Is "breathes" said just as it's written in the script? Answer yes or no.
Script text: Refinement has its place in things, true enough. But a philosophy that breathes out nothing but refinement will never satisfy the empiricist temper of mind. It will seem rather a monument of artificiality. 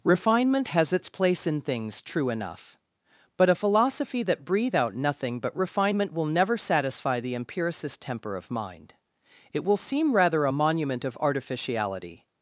no